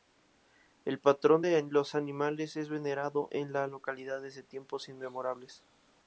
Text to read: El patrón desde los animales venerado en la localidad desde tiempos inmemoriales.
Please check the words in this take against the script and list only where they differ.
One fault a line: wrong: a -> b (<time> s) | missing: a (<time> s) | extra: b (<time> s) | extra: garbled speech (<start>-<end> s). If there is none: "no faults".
wrong: desde -> de (1.4 s)
extra: es (2.5 s)